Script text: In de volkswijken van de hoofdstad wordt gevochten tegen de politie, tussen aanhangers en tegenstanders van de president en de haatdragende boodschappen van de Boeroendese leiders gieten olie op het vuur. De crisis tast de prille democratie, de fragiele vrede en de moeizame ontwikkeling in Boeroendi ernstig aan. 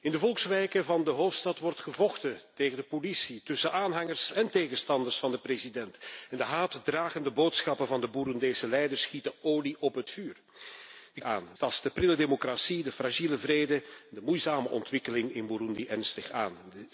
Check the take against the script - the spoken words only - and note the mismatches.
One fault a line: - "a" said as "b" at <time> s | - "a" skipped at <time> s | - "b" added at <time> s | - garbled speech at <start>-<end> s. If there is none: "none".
- "crisis" said as "aan" at 11.2 s